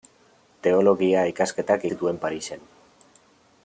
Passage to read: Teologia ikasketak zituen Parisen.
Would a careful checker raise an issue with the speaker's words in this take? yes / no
no